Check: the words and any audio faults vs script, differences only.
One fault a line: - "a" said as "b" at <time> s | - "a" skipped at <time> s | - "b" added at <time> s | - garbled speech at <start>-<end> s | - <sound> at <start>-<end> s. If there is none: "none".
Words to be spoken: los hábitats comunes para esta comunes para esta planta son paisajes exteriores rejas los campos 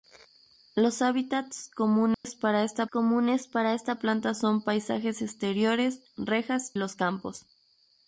- dropout at 2.1-2.2 s